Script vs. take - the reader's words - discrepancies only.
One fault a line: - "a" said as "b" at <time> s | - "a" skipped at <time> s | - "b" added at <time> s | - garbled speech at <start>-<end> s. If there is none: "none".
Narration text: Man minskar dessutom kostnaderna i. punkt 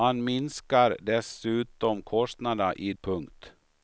none